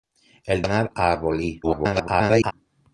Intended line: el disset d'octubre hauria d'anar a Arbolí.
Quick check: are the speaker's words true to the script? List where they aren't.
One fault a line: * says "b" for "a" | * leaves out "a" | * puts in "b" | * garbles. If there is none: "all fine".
* leaves out "disset d'octubre hauria"
* garbles